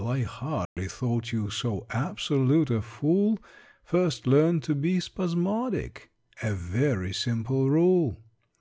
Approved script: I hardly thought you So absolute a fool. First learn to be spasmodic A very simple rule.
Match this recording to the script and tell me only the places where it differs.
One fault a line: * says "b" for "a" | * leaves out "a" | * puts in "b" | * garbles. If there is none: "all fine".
all fine